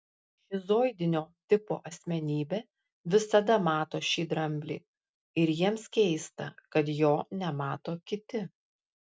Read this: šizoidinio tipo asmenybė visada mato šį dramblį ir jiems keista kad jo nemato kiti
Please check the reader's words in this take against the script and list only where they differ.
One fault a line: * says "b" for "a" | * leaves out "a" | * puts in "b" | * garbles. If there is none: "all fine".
all fine